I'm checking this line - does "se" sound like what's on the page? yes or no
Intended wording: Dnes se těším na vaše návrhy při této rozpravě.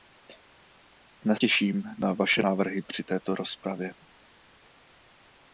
no